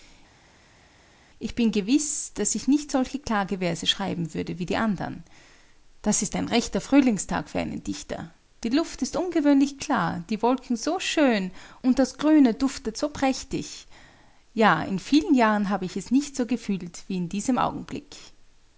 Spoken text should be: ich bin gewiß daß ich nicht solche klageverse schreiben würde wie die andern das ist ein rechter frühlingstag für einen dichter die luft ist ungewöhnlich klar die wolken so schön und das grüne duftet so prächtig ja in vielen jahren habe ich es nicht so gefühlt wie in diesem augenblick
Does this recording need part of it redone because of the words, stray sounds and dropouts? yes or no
no